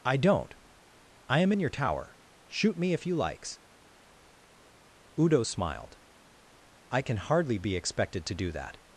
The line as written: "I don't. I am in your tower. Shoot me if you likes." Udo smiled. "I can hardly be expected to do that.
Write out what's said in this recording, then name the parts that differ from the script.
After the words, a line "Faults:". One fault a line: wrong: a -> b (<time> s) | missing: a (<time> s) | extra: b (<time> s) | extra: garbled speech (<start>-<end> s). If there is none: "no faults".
"I don't. I am in your tower. Shoot me if you likes." Udo smiled. "I can hardly be expected to do that.
Faults:
no faults